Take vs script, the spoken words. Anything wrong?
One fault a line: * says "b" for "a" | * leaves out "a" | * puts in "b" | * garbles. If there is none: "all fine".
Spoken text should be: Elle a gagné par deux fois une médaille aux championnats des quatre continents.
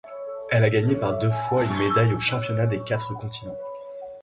all fine